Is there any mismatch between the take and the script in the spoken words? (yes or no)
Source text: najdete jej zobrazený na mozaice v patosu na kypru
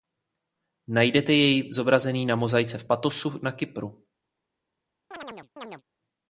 no